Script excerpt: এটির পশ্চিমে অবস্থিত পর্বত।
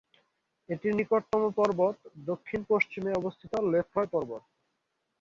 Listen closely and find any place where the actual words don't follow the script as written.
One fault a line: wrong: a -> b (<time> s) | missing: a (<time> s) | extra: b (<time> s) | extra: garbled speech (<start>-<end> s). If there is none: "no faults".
extra: নিকটতম পর্বত দক্ষিণ (0.9 s)
extra: লেফ্রয় (3.7 s)